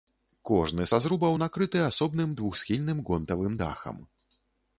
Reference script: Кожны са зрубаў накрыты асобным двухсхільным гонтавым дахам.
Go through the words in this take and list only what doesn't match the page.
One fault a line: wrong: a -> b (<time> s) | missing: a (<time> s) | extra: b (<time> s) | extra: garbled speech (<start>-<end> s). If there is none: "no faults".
no faults